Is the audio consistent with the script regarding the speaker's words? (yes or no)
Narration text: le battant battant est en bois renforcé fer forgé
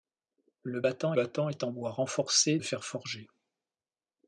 yes